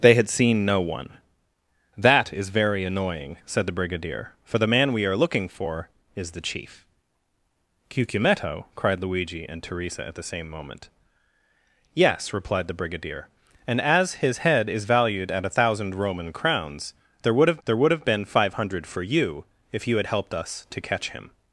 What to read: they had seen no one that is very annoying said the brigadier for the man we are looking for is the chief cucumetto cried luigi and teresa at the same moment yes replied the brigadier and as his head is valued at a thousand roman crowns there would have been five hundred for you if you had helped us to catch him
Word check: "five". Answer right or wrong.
right